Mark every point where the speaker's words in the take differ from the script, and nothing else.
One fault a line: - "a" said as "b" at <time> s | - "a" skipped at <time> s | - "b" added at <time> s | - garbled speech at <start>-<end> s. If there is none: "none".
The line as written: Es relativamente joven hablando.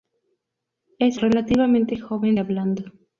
none